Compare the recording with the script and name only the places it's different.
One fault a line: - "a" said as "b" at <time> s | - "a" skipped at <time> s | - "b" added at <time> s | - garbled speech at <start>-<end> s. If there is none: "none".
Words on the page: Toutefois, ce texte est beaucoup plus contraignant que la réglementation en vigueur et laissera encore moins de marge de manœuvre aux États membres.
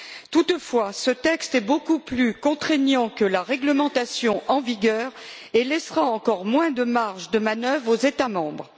none